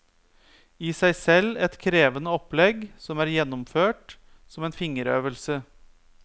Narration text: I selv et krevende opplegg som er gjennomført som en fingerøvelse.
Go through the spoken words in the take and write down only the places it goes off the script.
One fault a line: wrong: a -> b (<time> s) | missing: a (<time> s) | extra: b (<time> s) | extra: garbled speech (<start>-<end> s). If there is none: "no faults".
extra: seg (1.0 s)